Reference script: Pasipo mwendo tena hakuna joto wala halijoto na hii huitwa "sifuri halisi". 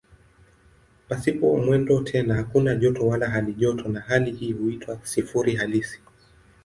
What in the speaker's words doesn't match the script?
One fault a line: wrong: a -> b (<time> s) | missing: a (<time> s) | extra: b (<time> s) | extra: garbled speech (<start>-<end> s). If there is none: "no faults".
extra: hali (4.0 s)